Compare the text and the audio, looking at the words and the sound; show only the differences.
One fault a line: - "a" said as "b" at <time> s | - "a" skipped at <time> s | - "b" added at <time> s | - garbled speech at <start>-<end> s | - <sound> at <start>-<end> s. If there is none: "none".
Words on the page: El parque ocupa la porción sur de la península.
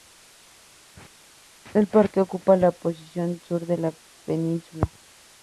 none